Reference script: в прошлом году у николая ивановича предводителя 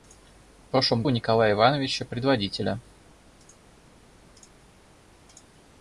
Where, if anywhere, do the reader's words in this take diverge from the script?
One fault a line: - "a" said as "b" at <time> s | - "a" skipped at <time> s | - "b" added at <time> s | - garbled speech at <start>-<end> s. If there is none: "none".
- "году" skipped at 1.0 s